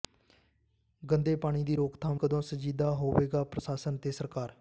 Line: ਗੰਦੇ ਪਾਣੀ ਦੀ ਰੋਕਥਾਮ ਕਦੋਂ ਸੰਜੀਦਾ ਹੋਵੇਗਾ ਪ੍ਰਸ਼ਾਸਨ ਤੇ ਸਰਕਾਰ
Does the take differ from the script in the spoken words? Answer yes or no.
no